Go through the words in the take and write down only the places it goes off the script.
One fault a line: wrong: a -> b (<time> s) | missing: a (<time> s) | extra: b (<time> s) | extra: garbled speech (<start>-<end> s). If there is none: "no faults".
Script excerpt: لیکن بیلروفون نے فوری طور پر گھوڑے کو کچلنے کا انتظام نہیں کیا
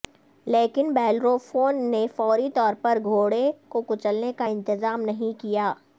no faults